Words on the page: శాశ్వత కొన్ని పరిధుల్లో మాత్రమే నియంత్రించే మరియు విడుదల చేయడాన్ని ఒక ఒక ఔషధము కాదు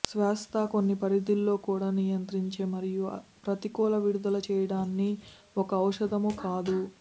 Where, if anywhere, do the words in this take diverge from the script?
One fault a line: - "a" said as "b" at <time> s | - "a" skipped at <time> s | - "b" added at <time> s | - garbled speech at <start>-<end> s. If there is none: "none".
- "మాత్రమే" said as "కూడా" at 1.6 s
- "ప్రతికూల" added at 3.5 s
- "ఒక" skipped at 5.7 s